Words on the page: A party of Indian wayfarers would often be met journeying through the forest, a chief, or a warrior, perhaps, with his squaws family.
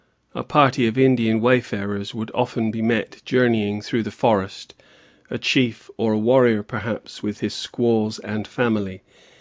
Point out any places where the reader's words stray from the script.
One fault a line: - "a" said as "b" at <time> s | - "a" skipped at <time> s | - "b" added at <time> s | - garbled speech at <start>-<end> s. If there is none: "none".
- "and" added at 8.2 s